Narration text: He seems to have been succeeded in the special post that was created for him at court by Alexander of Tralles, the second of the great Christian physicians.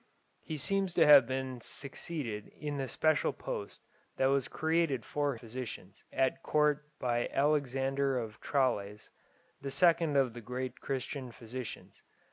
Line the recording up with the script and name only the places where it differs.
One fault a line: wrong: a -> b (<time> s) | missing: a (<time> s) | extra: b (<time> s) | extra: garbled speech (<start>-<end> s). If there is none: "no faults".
wrong: him -> physicians (5.3 s)